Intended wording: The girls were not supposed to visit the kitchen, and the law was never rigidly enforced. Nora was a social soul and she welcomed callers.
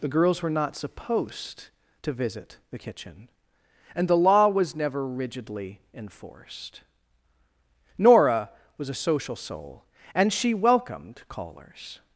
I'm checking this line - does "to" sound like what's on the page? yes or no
yes